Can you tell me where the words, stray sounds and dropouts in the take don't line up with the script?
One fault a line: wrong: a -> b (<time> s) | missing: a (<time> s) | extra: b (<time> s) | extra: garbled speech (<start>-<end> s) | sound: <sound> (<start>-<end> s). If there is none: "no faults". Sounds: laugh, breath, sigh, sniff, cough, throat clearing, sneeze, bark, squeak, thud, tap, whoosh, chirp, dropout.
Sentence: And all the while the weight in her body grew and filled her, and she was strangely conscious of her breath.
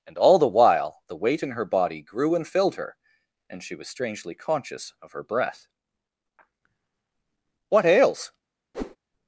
extra: What ails (7.7 s)
sound: whoosh (8.7-9.0 s)